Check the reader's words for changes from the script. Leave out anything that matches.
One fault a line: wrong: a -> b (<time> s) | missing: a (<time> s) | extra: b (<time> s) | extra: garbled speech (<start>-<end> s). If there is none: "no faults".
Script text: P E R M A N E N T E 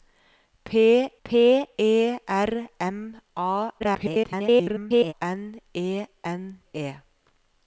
extra: p (1.2 s)
extra: garbled speech (3.8-5.1 s)
missing: T (6.6 s)